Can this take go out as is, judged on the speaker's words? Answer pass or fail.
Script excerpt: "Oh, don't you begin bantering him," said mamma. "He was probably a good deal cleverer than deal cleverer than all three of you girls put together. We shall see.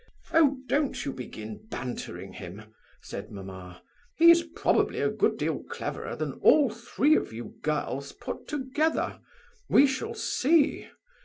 fail